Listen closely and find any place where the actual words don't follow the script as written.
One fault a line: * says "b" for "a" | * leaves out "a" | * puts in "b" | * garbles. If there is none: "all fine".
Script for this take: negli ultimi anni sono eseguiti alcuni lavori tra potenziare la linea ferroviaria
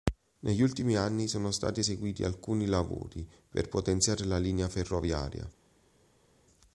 * puts in "stati"
* says "per" for "tra"